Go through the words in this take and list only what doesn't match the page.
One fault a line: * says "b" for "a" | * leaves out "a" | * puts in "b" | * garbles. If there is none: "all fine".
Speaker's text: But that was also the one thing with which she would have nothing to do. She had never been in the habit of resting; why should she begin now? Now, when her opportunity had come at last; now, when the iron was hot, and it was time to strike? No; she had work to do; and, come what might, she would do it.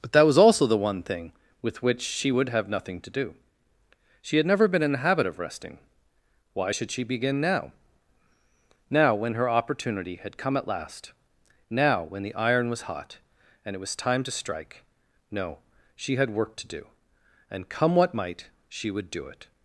all fine